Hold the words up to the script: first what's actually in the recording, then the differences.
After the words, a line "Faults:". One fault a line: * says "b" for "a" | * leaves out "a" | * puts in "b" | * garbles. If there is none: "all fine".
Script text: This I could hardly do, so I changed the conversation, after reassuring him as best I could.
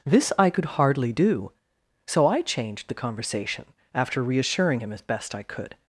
This I could hardly do, so I changed the conversation, after reassuring him as best I could.
Faults:
all fine